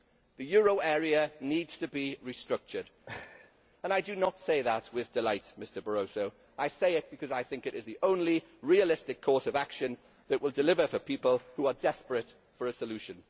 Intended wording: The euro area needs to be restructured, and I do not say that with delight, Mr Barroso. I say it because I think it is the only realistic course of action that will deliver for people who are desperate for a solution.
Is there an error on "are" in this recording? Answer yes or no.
no